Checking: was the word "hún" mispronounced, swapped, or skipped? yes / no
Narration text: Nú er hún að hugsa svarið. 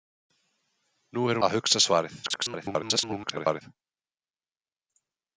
yes